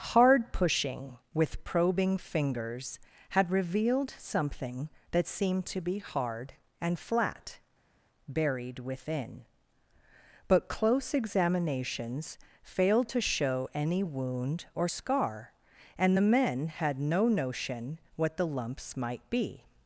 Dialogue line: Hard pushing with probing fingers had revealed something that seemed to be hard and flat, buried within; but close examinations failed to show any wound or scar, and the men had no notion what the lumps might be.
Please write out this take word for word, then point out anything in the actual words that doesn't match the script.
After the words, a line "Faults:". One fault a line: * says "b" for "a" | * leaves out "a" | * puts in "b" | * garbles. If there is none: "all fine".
Hard pushing with probing fingers had revealed something that seemed to be hard and flat, buried within; but close examinations failed to show any wound or scar, and the men had no notion what the lumps might be.
Faults:
all fine